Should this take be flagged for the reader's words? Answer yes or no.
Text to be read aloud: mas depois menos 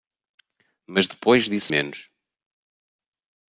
yes